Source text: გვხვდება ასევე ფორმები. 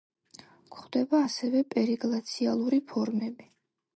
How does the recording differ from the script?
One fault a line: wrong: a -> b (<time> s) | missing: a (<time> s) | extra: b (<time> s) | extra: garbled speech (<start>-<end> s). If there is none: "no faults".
extra: პერიგლაციალური (1.8 s)